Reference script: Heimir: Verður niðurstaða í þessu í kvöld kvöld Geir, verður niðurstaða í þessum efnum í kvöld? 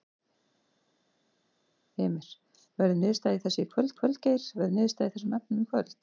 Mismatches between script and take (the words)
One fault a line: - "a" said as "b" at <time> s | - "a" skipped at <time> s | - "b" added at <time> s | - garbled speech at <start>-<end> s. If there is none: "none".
none